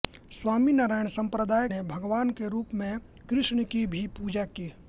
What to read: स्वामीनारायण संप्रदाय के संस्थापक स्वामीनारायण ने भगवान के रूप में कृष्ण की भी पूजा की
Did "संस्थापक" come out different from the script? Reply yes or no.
yes